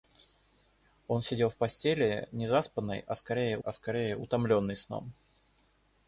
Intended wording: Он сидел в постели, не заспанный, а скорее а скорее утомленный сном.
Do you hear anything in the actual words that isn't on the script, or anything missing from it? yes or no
no